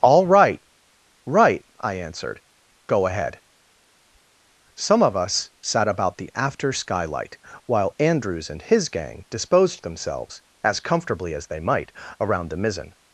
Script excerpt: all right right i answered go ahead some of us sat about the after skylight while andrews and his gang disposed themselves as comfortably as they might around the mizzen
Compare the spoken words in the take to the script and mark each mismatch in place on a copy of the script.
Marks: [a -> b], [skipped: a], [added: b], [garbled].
all right right i answered go ahead some of us sat about the after skylight while andrews and his gang disposed themselves as comfortably as they might around the mizzen